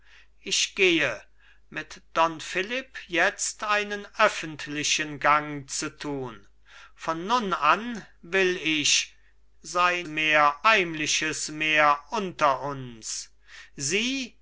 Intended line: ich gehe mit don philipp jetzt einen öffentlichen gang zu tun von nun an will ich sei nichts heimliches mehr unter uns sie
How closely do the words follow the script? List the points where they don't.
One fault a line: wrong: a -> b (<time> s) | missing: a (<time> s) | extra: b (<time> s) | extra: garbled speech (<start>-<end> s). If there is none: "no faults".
wrong: nichts -> mehr (10.0 s)